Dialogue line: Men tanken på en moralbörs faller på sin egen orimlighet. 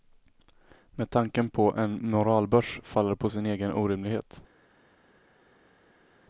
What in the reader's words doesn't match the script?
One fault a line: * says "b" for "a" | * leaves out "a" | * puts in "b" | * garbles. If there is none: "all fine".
all fine